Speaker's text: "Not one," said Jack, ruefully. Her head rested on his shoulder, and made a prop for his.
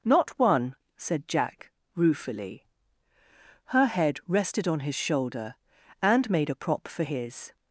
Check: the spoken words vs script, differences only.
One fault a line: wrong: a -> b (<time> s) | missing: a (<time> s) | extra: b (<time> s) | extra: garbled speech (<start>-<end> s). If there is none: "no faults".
no faults